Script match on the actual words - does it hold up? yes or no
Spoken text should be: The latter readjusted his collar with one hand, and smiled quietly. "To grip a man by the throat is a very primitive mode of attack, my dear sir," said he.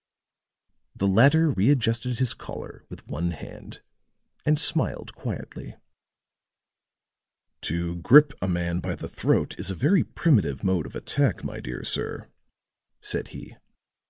yes